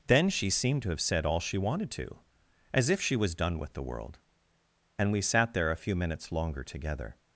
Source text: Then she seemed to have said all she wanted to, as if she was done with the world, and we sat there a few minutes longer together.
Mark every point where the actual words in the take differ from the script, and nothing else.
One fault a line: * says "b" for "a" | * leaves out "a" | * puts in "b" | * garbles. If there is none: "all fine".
all fine